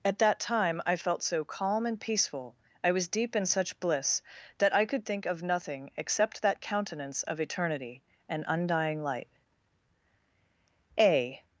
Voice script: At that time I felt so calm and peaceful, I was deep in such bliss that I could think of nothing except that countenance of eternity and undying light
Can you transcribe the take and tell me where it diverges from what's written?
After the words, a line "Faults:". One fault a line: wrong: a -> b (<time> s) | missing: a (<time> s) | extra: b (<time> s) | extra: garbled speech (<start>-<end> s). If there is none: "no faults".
At that time I felt so calm and peaceful, I was deep in such bliss that I could think of nothing except that countenance of eternity and undying light A
Faults:
extra: A (11.0 s)